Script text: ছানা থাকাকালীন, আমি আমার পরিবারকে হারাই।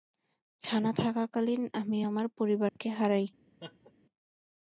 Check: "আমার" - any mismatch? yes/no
no